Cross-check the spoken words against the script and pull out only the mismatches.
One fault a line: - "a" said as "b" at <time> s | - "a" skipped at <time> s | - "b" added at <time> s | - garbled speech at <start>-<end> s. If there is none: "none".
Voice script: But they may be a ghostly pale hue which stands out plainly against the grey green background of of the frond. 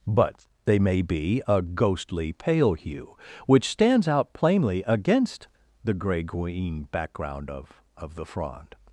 none